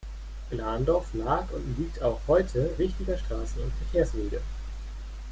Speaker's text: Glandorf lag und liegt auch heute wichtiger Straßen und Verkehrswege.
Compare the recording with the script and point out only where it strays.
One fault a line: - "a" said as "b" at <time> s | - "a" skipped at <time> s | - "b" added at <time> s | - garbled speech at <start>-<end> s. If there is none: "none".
none